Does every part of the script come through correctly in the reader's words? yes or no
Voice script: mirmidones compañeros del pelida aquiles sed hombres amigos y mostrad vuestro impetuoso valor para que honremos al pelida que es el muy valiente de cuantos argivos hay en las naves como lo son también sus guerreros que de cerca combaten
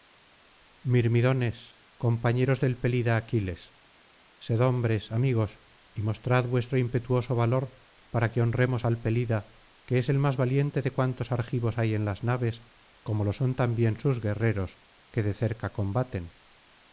no